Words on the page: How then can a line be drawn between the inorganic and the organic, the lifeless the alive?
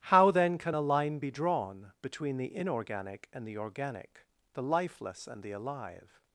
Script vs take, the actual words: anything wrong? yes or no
yes